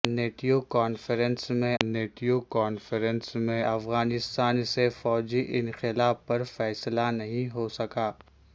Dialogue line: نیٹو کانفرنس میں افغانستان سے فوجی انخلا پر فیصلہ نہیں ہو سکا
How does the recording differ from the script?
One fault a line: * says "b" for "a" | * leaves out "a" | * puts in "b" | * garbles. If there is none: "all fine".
* puts in "نیٹو کانفرنس میں"